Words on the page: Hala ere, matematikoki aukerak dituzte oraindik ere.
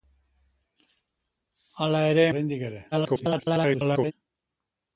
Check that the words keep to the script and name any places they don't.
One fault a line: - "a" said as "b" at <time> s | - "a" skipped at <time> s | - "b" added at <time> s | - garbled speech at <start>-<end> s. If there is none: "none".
- "matematikoki aukerak dituzte" skipped at 2.2 s
- garbled speech at 2.9-4.1 s